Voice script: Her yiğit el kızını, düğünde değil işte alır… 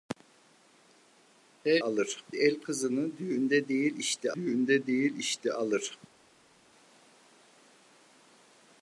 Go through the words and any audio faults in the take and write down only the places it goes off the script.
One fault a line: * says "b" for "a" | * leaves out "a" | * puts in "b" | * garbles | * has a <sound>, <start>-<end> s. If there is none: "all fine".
* says "alır" for "yiğit"
* puts in "düğünde değil işte"